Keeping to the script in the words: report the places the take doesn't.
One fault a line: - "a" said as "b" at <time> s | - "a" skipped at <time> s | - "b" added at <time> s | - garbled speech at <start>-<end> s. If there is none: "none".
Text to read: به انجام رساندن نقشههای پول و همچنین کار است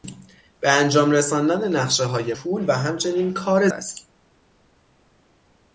none